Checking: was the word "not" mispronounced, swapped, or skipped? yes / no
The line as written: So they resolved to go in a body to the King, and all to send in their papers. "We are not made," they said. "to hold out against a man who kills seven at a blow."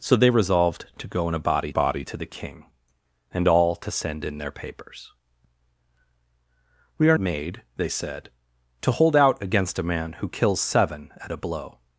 yes